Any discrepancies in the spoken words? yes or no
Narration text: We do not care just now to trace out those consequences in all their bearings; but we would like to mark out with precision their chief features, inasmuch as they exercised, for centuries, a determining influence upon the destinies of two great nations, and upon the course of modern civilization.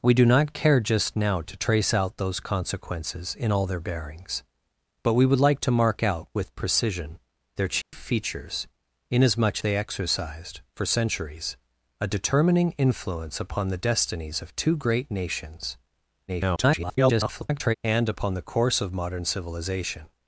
yes